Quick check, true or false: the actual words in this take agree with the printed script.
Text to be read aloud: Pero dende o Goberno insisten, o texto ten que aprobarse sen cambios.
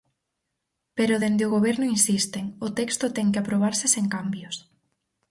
true